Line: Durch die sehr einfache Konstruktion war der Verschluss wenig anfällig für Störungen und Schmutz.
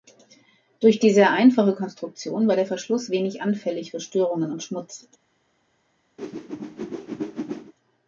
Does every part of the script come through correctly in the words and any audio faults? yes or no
no